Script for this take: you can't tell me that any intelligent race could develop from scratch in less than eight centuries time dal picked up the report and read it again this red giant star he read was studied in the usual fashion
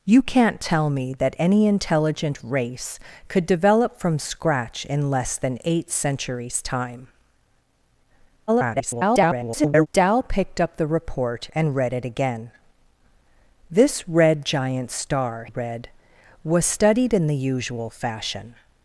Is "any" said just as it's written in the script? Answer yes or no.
yes